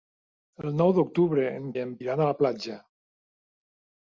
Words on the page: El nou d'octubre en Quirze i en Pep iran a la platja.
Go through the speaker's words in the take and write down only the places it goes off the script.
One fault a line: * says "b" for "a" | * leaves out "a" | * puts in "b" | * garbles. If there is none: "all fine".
* leaves out "Quirze"
* leaves out "Pep"